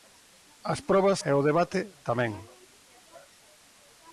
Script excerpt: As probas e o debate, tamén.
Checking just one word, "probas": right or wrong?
right